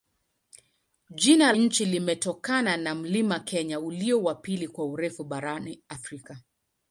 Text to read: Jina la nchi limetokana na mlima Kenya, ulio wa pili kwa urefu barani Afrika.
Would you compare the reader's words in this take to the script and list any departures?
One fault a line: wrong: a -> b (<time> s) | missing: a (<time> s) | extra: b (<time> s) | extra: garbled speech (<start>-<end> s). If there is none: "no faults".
missing: la (1.5 s)